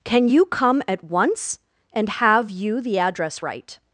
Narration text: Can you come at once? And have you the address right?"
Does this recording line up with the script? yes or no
yes